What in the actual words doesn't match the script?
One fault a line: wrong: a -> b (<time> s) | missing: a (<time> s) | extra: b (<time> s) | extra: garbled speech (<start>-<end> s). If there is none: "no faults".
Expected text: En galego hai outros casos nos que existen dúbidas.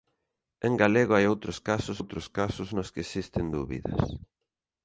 extra: outros casos (2.0 s)